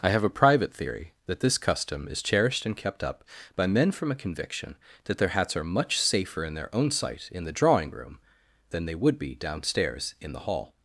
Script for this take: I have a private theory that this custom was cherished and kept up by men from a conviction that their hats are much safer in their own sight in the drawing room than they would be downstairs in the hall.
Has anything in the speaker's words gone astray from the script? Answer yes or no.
yes